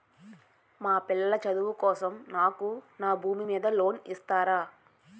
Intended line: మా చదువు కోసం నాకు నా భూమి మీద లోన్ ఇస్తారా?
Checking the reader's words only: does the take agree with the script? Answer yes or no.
no